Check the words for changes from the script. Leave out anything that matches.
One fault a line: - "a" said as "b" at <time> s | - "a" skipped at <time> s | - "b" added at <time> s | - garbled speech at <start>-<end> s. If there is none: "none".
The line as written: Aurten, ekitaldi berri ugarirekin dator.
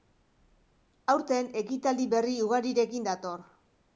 none